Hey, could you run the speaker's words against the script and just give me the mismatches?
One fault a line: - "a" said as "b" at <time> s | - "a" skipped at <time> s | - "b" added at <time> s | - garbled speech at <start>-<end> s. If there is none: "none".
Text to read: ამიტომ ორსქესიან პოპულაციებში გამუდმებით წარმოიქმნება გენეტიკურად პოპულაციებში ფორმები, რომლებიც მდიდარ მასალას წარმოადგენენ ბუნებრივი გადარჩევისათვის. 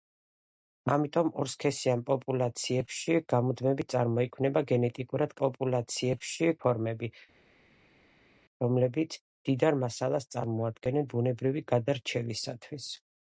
none